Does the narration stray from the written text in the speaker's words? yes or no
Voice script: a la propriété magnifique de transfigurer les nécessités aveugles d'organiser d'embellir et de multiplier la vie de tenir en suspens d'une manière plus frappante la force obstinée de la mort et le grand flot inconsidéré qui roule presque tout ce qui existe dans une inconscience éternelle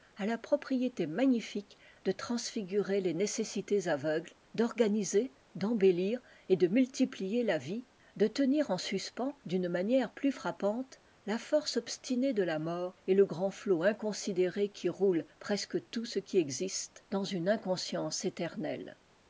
no